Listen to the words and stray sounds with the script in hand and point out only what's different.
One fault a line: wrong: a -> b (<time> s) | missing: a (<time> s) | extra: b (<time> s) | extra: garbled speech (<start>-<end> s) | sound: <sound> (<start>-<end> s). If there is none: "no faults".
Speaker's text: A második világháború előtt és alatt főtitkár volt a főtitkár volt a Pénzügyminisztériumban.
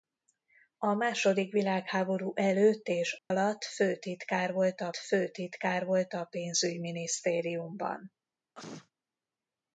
sound: dropout (3.2-3.3 s)
sound: sneeze (8.5-8.9 s)